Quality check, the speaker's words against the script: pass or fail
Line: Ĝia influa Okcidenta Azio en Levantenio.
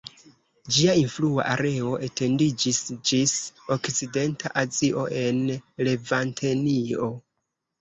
fail